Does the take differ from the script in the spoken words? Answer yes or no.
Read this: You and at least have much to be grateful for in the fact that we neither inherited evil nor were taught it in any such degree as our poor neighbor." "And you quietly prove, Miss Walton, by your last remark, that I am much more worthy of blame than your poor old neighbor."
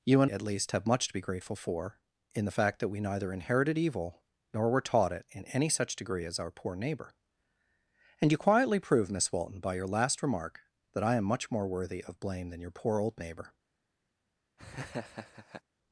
no